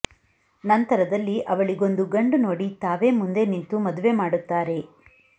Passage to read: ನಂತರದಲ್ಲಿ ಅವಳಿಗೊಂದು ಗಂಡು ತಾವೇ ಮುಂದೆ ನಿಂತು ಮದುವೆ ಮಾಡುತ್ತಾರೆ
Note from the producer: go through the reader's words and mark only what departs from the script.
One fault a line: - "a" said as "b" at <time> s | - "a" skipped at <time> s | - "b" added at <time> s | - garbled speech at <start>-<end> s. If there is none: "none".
- "ನೋಡಿ" added at 2.4 s